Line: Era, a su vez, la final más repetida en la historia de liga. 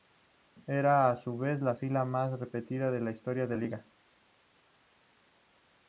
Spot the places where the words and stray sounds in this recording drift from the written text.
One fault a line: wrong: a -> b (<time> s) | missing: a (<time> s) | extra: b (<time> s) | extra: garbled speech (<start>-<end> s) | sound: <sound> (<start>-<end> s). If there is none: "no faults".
no faults